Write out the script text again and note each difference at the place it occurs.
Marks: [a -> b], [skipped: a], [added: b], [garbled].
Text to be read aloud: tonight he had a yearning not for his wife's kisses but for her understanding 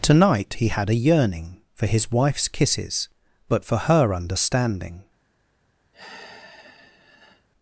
tonight he had a yearning [skipped: not] for his wife's kisses but for her understanding